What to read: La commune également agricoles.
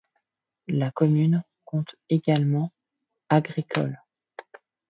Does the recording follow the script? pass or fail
fail